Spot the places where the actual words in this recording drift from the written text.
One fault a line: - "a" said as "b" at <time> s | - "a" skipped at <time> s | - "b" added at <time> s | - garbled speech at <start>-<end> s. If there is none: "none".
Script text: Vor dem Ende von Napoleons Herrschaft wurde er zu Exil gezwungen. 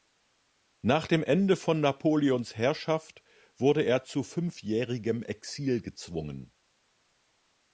- "Vor" said as "Nach" at 0.8 s
- "fünfjährigem" added at 4.2 s